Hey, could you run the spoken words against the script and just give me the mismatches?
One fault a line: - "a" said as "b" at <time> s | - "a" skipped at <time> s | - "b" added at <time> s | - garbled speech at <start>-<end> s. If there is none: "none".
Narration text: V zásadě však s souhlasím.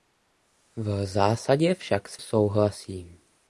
none